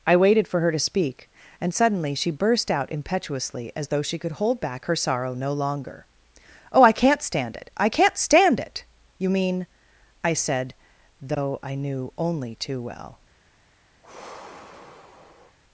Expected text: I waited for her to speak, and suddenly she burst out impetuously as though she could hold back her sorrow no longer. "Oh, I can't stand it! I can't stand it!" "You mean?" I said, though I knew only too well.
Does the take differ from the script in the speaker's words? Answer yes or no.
no